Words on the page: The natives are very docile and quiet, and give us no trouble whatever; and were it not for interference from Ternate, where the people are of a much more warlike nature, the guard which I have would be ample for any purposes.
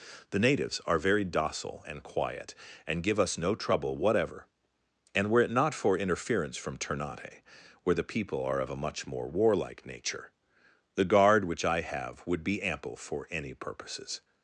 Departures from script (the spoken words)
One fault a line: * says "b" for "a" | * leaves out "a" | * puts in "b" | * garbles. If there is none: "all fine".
all fine